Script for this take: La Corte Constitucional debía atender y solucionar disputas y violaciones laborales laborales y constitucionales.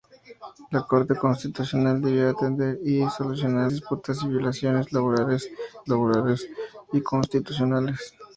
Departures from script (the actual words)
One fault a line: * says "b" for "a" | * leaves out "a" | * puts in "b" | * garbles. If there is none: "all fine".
all fine